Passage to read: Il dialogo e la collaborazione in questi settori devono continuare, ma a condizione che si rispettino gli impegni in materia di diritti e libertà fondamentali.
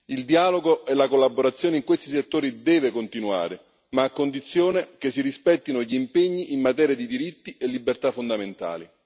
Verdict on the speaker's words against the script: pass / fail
pass